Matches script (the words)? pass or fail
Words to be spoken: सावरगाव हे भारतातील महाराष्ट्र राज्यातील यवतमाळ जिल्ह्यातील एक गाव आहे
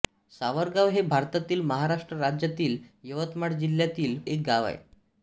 pass